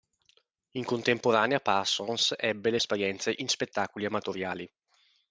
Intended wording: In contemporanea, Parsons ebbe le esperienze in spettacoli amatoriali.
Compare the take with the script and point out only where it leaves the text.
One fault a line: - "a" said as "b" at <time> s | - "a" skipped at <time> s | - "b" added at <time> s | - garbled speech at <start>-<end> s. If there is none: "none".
none